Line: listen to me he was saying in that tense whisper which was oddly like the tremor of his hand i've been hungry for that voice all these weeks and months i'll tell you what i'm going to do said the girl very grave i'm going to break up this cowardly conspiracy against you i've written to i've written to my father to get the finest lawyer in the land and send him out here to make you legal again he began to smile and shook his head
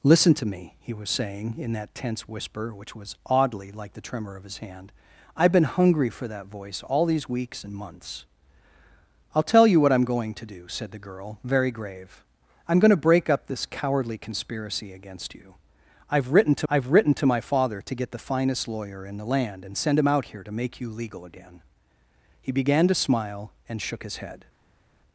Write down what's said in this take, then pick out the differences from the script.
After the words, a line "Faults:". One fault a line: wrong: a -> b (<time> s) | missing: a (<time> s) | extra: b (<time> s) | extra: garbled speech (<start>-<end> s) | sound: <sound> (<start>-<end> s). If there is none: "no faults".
listen to me he was saying in that tense whisper which was oddly like the tremor of his hand i've been hungry for that voice all these weeks and months i'll tell you what i'm going to do said the girl very grave i'm going to break up this cowardly conspiracy against you i've written to i've written to my father to get the finest lawyer in the land and send him out here to make you legal again he began to smile and shook his head
Faults:
no faults